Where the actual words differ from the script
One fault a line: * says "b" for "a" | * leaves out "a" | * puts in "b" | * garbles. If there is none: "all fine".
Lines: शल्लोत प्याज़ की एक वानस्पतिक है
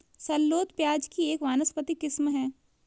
* puts in "किस्म"